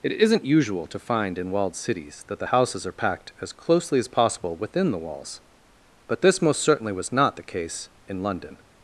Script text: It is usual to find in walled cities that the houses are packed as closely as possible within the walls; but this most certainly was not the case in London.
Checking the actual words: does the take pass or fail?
fail